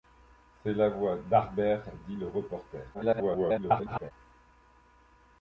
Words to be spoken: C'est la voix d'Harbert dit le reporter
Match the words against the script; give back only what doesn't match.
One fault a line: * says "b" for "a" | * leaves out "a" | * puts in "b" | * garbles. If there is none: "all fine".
* garbles